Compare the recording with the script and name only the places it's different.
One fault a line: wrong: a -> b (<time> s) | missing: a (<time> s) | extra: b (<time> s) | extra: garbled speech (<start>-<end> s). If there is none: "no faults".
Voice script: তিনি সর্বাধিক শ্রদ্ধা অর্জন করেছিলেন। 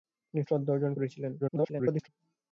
missing: সর্বাধিক (0.4 s)
extra: garbled speech (1.4-2.1 s)